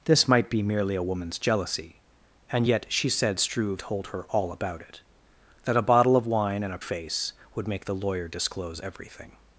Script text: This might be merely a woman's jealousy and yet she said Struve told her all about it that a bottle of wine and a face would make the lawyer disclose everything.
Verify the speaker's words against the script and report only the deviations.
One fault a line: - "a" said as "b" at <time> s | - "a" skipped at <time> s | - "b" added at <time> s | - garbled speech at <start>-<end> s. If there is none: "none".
none